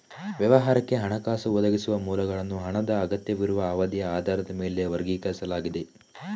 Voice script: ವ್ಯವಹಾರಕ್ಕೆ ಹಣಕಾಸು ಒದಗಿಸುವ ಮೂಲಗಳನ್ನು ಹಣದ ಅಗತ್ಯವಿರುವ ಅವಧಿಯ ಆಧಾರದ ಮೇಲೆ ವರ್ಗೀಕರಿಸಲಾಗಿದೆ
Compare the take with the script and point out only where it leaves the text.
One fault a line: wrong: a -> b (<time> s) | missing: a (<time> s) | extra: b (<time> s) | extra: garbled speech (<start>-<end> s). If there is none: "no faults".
no faults